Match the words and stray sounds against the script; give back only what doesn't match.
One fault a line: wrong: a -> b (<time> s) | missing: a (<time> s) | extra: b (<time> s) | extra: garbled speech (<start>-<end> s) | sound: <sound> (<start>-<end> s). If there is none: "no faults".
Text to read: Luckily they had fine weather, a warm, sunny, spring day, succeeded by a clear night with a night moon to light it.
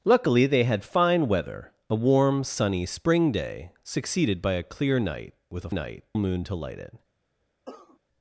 sound: cough (7.7-8.0 s)